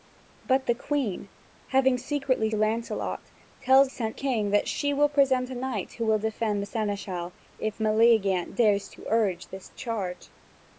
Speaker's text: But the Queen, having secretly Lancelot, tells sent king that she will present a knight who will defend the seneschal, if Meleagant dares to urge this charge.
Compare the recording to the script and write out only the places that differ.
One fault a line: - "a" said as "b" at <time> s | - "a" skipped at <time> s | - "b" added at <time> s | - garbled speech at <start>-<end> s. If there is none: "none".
none